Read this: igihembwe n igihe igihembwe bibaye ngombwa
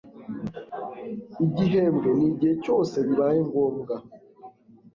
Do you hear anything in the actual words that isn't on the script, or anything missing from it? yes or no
yes